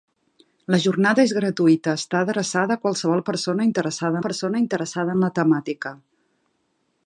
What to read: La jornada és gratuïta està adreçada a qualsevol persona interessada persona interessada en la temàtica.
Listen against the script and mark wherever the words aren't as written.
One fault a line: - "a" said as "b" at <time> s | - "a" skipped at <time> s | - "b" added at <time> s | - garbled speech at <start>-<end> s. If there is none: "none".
none